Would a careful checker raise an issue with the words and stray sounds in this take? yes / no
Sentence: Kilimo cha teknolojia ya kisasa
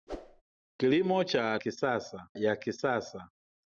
yes